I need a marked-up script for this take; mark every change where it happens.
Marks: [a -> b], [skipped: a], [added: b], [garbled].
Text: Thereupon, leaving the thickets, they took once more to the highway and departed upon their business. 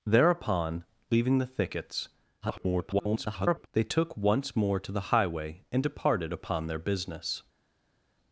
Thereupon, leaving the thickets, [garbled] they took once more to the highway and departed upon their business.